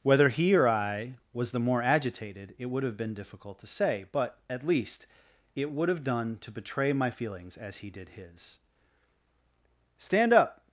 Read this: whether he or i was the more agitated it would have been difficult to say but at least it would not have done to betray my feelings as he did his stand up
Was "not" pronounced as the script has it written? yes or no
no